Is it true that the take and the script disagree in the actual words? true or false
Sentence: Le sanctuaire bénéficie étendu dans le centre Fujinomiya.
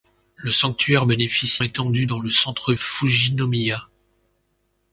false